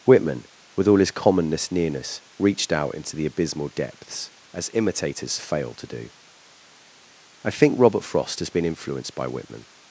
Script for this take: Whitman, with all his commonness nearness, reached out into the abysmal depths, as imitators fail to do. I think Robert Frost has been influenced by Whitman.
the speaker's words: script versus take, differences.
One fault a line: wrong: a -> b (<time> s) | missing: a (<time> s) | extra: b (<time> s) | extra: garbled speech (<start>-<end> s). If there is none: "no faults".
no faults